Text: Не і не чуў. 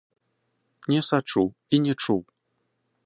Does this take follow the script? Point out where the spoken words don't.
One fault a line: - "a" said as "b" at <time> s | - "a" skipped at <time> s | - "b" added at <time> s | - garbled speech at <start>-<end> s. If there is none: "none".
- "сачу" added at 1.1 s